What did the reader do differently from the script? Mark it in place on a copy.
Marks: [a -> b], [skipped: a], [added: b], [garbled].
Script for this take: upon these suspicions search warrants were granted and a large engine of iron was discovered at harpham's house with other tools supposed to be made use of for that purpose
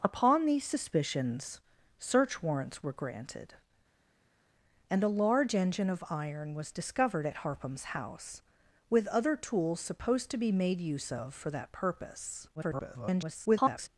upon these suspicions search warrants were granted and a large engine of iron was discovered at harpham's house with other tools supposed to be made use of for that purpose [garbled]